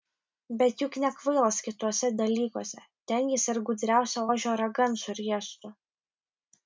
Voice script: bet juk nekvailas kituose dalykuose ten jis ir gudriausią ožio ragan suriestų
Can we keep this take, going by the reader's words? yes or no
yes